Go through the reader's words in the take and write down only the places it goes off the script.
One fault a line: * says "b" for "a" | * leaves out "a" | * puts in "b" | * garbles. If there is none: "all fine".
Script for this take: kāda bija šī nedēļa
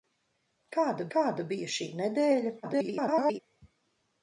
* puts in "kāda"
* garbles